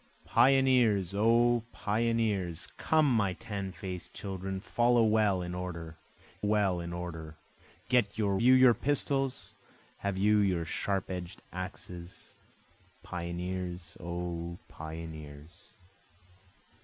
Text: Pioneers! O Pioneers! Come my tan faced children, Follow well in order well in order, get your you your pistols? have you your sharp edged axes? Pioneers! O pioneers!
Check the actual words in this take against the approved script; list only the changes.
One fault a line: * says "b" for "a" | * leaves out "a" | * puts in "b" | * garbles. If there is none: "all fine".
all fine